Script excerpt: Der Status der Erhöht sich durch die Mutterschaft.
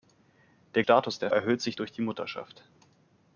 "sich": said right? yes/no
yes